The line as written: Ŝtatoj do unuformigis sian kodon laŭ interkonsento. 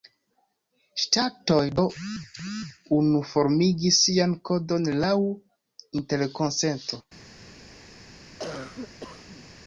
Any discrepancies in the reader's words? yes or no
no